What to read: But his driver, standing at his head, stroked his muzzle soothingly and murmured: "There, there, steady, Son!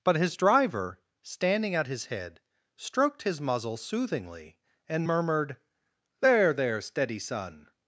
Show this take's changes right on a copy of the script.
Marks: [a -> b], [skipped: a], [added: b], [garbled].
But his driver, standing at his head, stroked his muzzle soothingly and murmured: "There, there, steady, Son!